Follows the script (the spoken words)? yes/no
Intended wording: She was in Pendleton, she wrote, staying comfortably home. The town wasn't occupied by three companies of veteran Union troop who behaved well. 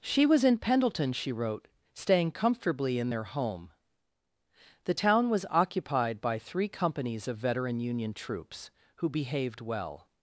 no